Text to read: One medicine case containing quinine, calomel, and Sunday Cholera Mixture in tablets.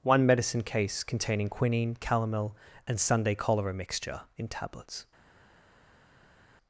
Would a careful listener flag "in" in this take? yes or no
no